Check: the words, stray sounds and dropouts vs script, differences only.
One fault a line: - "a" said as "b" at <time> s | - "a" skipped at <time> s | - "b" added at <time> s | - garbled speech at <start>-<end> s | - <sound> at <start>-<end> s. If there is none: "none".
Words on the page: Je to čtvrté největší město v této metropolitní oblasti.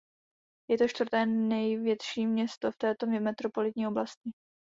none